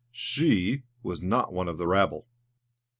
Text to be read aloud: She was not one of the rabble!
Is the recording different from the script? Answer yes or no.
no